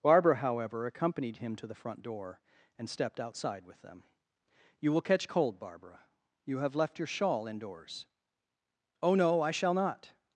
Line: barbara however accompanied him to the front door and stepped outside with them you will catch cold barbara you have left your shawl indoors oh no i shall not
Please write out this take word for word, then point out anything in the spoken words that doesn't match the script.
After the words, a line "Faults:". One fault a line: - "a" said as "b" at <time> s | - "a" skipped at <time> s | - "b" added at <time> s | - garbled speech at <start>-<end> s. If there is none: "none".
barbara however accompanied him to the front door and stepped outside with them you will catch cold barbara you have left your shawl indoors oh no i shall not
Faults:
none